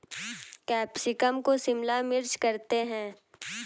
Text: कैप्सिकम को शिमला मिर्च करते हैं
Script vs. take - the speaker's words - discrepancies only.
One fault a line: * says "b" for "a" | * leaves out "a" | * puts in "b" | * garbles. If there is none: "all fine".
all fine